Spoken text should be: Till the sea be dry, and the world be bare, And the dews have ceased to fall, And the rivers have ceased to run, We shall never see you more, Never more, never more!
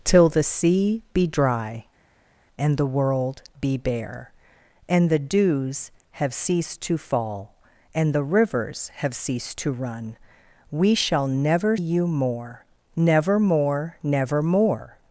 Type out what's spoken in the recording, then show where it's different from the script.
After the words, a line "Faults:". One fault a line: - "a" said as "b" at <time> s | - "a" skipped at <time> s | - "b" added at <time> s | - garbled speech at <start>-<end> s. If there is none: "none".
Till the sea be dry, and the world be bare, And the dews have ceased to fall, And the rivers have ceased to run, We shall never you more, Never more, never more!
Faults:
- "see" skipped at 11.8 s